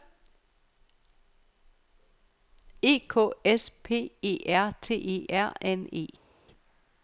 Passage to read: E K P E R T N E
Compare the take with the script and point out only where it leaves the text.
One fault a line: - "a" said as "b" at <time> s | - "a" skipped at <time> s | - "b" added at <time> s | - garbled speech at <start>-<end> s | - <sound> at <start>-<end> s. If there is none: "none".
- "S" added at 3.5 s
- "E R" added at 4.9 s